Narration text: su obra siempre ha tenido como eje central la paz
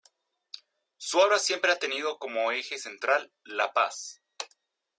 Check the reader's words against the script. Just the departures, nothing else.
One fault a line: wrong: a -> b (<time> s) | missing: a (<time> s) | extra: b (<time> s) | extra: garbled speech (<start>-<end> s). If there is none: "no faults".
no faults